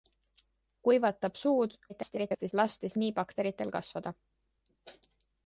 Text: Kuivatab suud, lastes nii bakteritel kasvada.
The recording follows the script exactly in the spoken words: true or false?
false